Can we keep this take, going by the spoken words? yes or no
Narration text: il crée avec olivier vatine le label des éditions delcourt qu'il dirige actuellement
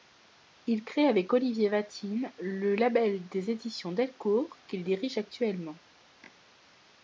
yes